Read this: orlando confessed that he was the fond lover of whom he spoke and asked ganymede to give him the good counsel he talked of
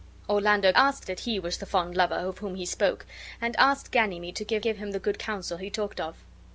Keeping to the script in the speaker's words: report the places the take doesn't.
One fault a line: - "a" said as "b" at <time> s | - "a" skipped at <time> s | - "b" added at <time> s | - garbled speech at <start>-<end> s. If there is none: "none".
- "confessed" said as "asked" at 0.7 s
- "give" added at 4.6 s